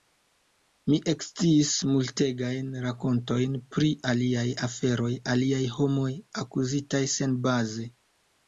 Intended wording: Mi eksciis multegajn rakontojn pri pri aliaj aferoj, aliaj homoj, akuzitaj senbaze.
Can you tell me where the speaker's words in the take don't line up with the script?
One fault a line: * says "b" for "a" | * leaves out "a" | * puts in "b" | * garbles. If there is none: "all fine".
* leaves out "pri"